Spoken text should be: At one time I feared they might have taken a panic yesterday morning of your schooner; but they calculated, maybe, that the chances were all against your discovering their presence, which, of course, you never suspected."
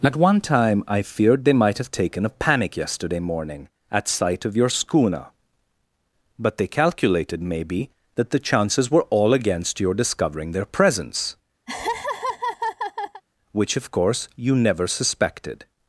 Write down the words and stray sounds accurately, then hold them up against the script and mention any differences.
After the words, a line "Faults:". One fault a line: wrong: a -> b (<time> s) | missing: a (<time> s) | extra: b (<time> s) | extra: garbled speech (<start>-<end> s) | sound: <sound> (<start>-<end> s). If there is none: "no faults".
At one time I feared they might have taken a panic yesterday morning at sight of your schooner; but they calculated, maybe, that the chances were all against your discovering their presence, which, of course, you never suspected."
Faults:
extra: at sight (3.9 s)
sound: laugh (11.7-13.2 s)